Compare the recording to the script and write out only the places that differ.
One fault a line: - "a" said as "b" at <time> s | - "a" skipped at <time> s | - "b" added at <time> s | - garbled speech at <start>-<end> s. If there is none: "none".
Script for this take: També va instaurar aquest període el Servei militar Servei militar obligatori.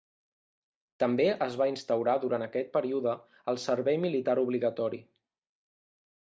- "es" added at 1.5 s
- "durant" added at 2.2 s
- "Servei militar" skipped at 4.4 s